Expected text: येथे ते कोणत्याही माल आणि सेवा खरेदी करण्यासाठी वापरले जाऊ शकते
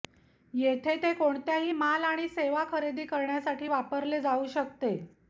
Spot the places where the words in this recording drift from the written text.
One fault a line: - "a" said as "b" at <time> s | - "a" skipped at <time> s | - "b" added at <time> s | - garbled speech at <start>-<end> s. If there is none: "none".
none